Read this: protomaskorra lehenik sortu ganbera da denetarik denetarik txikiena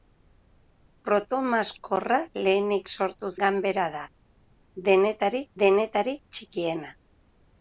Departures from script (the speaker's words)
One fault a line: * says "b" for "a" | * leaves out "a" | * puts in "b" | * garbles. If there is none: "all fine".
all fine